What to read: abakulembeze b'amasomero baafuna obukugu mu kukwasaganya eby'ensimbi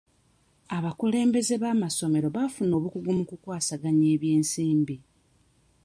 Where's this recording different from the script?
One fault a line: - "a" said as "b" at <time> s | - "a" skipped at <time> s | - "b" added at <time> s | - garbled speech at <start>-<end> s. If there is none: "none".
none